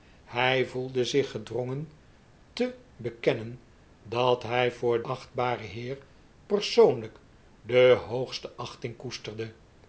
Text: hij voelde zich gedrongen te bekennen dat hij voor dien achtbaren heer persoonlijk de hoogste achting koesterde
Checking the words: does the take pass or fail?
fail